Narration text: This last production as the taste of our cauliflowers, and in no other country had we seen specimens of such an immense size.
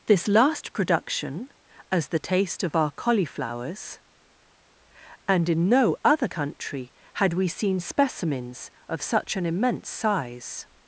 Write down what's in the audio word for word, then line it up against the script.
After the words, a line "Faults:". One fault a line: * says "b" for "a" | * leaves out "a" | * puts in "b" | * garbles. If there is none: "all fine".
This last production as the taste of our cauliflowers, and in no other country had we seen specimens of such an immense size.
Faults:
all fine